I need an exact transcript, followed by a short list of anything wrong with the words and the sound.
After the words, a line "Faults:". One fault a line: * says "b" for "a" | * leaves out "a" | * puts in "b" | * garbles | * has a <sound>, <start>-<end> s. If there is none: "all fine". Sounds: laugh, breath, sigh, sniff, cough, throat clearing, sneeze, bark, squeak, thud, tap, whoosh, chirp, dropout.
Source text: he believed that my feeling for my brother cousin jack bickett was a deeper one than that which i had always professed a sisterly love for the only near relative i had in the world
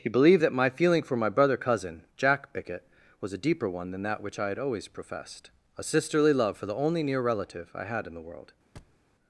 he believed that my feeling for my brother cousin jack bickett was a deeper one than that which i had always professed a sisterly love for the only near relative i had in the world
Faults:
* has a thud, 8.8-9.0 s